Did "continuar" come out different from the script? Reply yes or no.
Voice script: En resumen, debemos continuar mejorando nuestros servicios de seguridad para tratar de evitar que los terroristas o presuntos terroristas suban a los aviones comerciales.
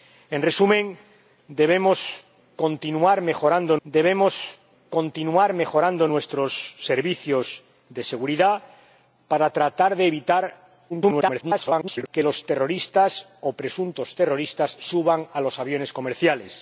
no